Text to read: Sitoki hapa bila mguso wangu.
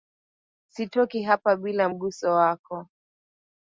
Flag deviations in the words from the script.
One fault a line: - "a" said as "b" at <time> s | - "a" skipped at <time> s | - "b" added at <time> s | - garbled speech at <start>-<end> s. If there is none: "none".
- "wangu" said as "wako" at 2.3 s